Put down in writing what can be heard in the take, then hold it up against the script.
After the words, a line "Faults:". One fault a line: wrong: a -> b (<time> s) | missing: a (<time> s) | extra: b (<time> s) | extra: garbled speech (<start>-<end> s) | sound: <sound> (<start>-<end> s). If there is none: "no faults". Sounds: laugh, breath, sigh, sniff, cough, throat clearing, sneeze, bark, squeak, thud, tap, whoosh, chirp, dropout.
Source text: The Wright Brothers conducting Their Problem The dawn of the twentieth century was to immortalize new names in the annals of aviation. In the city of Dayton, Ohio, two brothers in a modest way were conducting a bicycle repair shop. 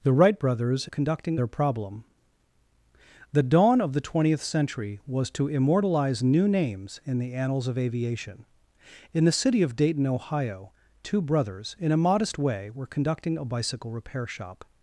The Wright Brothers conducting Their Problem The dawn of the twentieth century was to immortalize new names in the annals of aviation. In the city of Dayton, Ohio, two brothers in a modest way were conducting a bicycle repair shop.
Faults:
no faults